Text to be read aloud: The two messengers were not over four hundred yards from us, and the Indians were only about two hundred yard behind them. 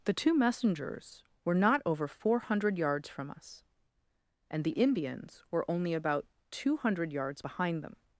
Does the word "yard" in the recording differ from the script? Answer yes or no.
yes